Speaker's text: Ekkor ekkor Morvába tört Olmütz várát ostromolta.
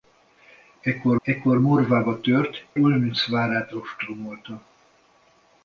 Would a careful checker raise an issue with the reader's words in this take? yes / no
no